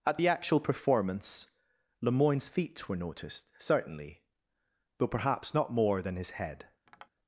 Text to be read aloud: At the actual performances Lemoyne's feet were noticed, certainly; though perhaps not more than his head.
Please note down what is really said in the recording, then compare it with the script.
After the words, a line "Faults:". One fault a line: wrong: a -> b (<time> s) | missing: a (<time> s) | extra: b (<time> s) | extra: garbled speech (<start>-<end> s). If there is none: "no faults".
At the actual performance Lemoyne's feet were noticed, certainly; though perhaps not more than his head.
Faults:
wrong: performances -> performance (0.6 s)